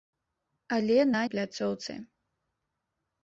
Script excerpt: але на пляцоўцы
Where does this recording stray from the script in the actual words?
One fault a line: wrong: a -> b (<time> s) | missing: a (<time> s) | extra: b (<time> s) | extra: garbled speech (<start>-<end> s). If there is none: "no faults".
no faults